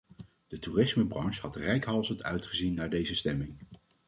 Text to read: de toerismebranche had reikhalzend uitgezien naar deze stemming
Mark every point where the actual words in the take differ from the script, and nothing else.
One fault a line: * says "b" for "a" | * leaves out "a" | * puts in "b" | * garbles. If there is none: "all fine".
all fine